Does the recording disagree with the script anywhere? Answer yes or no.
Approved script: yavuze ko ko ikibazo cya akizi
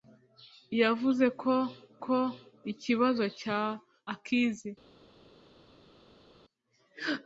no